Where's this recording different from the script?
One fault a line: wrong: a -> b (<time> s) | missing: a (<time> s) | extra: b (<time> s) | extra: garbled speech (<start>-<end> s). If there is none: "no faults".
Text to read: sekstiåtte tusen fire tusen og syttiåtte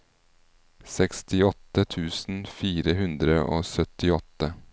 wrong: tusen -> hundre (3.0 s)